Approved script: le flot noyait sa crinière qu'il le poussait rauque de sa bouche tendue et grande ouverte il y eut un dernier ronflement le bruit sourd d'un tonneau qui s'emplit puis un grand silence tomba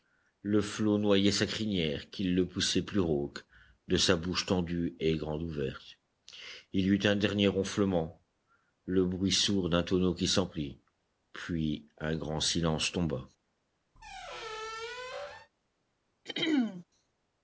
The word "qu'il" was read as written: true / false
true